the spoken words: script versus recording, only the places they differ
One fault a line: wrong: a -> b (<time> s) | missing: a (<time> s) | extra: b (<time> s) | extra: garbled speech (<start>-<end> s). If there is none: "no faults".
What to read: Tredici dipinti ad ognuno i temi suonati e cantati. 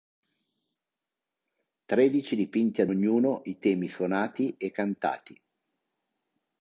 no faults